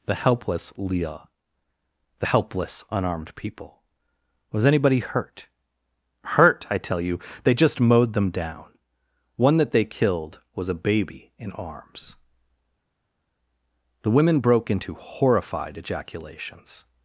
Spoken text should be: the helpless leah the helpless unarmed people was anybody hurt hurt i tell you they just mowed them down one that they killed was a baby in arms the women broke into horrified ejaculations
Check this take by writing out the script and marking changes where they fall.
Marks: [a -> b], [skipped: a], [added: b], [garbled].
the helpless leah the helpless unarmed people was anybody hurt hurt i tell you they just mowed them down one that they killed was a baby in arms the women broke into horrified ejaculations